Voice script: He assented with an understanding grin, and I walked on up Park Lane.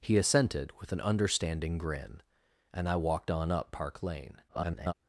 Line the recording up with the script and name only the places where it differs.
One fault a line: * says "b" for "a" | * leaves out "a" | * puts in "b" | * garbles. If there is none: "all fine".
* garbles